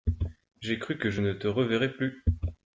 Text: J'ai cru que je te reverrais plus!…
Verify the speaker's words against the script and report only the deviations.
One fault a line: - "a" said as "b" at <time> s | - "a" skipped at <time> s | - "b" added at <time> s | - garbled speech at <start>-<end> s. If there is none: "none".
- "ne" added at 1.2 s